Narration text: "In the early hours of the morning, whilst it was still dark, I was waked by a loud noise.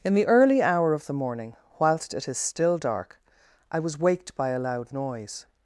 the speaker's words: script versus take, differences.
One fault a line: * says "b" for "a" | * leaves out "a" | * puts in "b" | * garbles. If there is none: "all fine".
* says "hour" for "hours"
* says "is" for "was"